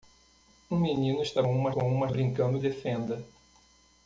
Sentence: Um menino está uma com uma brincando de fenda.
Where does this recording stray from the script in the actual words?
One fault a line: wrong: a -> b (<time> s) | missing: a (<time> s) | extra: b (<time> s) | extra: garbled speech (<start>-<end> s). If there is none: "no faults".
no faults